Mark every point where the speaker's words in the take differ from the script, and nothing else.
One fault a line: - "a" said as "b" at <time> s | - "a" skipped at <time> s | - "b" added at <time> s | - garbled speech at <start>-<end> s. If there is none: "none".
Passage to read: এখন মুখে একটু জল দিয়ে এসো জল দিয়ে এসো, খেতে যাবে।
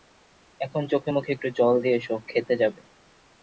- "চোখে" added at 0.9 s
- "জল দিয়ে এসো" skipped at 2.2 s